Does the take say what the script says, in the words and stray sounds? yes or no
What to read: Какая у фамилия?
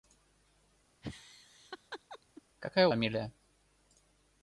no